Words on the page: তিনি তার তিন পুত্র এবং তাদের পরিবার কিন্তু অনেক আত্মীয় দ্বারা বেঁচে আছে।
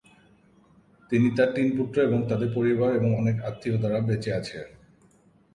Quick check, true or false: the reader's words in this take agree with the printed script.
false